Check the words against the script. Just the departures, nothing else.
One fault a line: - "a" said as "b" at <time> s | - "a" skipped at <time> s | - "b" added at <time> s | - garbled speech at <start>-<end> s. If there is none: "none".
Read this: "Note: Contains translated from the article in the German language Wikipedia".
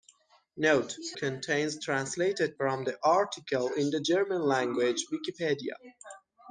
none